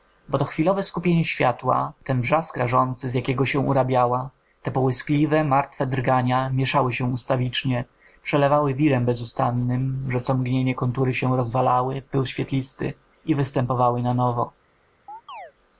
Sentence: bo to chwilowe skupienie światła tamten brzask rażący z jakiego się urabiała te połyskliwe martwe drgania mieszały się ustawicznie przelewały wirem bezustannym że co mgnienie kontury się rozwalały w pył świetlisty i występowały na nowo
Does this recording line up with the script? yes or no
no